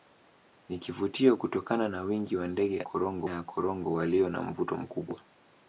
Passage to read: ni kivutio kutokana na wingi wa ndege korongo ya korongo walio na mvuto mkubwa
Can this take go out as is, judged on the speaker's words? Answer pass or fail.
pass